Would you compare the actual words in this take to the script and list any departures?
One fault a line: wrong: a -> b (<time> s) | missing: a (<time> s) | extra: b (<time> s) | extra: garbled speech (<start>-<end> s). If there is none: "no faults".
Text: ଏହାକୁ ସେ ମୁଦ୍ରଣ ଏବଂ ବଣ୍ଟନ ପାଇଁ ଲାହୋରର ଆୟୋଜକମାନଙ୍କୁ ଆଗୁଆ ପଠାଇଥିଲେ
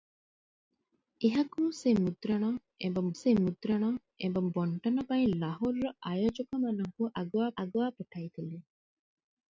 extra: ସେ ମୁଦ୍ରଣ ଏବଂ (3.2 s)
extra: ଆଗୁଆ (7.6 s)